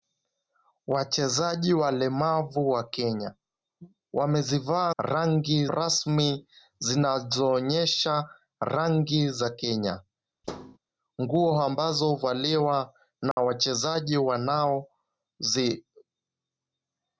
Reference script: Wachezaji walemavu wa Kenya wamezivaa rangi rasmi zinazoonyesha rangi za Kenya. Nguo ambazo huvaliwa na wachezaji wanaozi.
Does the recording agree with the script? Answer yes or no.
yes